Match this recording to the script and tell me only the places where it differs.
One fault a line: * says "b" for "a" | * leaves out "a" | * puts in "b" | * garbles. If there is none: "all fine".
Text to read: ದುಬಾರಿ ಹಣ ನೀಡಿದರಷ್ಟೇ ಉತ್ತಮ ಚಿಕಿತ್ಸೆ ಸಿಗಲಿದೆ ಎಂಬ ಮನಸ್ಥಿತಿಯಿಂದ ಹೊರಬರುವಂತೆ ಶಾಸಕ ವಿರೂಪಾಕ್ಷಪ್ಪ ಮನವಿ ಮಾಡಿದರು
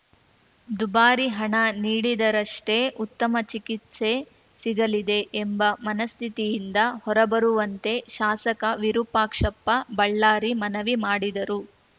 * puts in "ಬಳ್ಳಾರಿ"